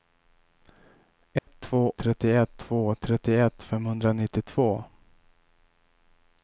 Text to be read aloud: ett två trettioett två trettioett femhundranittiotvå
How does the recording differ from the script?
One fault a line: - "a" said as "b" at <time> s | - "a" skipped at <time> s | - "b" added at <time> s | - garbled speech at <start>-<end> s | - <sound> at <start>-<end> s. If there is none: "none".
- dropout at 1.4-1.5 s